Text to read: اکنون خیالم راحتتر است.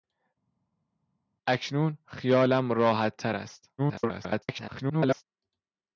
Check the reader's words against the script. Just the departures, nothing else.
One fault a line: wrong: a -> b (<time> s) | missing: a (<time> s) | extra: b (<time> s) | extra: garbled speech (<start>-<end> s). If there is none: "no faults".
extra: garbled speech (3.8-5.2 s)